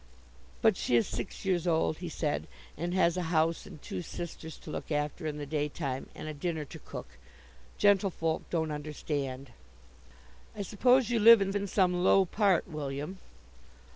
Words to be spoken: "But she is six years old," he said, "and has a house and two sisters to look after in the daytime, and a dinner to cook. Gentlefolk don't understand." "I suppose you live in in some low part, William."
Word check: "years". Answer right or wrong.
right